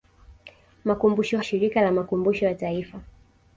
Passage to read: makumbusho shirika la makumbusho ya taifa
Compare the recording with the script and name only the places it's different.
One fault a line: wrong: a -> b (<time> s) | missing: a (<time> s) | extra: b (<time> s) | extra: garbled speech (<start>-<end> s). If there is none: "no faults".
no faults